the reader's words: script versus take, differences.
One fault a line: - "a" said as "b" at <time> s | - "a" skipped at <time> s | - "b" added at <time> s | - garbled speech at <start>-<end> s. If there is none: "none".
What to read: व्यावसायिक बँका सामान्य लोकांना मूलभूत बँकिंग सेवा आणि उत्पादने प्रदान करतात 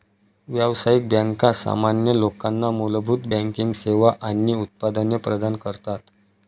none